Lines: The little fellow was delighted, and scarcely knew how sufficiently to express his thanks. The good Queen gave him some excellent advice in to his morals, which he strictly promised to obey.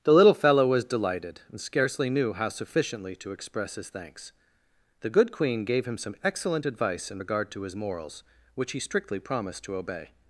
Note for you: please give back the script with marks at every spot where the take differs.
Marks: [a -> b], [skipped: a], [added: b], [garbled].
The little fellow was delighted, and scarcely knew how sufficiently to express his thanks. The good Queen gave him some excellent advice in [added: regard] to his morals, which he strictly promised to obey.